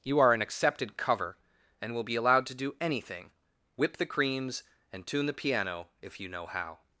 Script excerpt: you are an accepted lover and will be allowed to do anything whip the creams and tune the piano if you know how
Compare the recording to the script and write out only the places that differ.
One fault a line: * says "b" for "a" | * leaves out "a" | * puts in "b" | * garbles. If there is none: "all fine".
* says "cover" for "lover"